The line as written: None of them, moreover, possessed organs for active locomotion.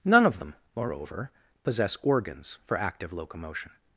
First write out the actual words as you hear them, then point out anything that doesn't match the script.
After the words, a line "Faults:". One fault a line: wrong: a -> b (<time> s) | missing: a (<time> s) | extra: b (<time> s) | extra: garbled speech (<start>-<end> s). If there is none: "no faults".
None of them, moreover, possess organs for active locomotion.
Faults:
wrong: possessed -> possess (1.6 s)